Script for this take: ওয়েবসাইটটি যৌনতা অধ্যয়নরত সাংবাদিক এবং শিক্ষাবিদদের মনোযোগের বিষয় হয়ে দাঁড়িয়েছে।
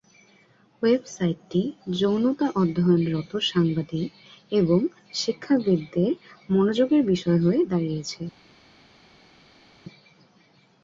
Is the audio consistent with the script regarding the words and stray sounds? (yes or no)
yes